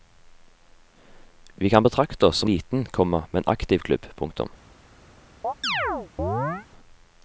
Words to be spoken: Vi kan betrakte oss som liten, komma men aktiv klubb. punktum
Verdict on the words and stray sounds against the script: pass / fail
fail